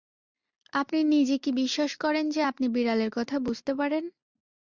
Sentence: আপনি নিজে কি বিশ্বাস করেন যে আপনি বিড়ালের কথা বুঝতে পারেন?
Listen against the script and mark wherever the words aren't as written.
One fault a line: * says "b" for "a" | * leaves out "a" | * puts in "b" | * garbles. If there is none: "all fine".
all fine